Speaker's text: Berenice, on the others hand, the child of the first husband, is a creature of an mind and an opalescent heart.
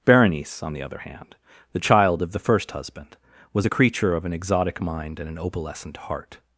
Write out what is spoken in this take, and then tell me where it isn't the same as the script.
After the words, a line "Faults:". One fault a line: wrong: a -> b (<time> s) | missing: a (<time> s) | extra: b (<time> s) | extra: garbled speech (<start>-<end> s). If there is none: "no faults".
Berenice, on the other hand, the child of the first husband, was a creature of an exotic mind and an opalescent heart.
Faults:
wrong: others -> other (0.8 s)
wrong: is -> was (3.5 s)
extra: exotic (4.3 s)